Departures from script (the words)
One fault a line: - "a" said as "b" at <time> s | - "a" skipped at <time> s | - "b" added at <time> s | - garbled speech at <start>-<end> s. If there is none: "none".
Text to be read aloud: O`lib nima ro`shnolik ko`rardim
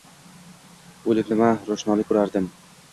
none